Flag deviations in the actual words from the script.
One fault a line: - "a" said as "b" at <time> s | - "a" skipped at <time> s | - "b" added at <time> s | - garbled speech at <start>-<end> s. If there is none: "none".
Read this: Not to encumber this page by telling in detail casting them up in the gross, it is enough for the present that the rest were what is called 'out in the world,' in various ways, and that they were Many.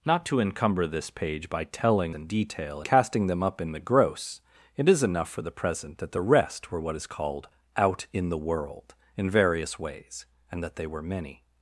none